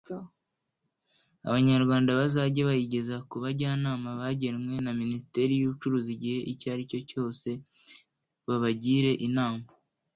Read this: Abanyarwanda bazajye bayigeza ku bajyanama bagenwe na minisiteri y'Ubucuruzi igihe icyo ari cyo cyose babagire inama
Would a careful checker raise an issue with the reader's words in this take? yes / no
no